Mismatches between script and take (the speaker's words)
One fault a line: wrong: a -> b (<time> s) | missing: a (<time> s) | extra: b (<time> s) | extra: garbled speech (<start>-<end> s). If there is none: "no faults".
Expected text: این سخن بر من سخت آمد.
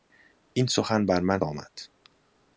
missing: سخت (1.4 s)